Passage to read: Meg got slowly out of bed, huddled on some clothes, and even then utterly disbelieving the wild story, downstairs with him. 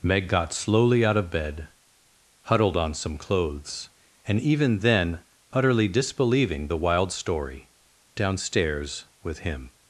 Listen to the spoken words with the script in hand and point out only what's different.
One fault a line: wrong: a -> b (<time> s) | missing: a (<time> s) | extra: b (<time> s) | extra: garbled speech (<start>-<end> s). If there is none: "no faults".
no faults